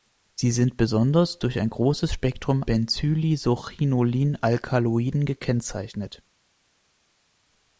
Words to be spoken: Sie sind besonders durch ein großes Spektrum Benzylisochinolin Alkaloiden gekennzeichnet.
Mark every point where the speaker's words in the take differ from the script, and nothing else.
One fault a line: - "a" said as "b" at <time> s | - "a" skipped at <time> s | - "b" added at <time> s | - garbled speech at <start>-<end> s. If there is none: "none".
none